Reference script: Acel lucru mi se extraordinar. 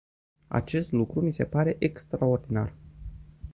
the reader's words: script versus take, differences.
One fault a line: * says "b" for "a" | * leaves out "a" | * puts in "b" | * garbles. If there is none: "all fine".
* says "Acest" for "Acel"
* puts in "pare"